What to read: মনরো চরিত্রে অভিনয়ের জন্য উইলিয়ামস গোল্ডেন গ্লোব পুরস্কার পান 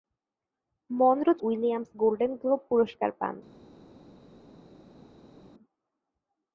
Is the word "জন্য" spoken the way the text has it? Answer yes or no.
no